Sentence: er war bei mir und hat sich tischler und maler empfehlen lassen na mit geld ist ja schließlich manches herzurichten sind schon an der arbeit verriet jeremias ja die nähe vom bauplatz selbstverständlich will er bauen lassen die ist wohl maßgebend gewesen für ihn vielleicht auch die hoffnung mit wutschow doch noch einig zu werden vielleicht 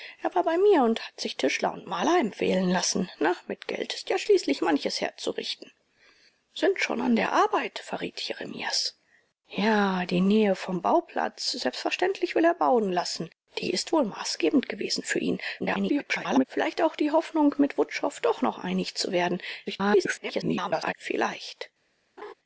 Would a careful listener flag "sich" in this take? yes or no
no